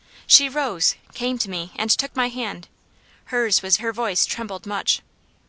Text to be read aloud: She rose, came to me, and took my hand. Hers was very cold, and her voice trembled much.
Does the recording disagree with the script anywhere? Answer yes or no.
yes